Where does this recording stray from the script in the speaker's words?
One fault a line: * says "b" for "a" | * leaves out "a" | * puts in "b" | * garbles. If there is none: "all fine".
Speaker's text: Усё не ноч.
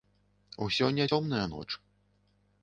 * puts in "цёмная"